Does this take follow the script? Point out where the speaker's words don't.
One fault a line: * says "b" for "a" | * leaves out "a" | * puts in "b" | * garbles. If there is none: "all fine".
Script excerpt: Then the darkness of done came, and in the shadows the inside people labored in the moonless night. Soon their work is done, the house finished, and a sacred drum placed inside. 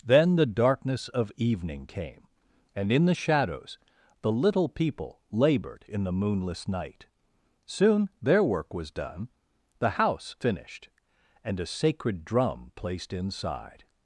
* says "evening" for "done"
* says "little" for "inside"
* says "was" for "is"